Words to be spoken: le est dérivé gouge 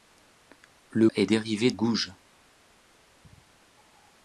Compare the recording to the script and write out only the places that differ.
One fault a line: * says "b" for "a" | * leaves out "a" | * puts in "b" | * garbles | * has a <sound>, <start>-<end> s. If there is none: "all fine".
all fine